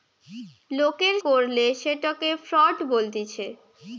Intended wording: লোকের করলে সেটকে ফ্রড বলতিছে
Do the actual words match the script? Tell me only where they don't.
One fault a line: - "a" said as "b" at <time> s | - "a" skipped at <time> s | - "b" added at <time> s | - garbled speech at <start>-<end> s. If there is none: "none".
none